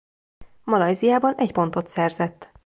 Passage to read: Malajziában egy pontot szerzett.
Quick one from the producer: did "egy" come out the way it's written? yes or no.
yes